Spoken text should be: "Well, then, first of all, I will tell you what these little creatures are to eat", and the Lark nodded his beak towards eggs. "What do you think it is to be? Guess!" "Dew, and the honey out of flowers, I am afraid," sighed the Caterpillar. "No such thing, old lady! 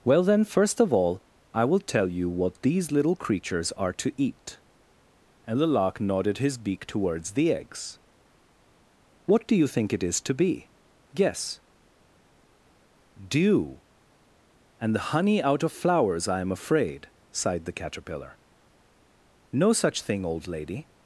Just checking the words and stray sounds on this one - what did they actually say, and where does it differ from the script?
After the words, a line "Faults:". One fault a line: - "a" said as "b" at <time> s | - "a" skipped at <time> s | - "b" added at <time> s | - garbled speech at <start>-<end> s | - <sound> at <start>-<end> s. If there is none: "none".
"Well, then, first of all, I will tell you what these little creatures are to eat", and the Lark nodded his beak towards the eggs. "What do you think it is to be? Guess!" "Dew, and the honey out of flowers, I am afraid," sighed the Caterpillar. "No such thing, old lady!
Faults:
- "the" added at 7.3 s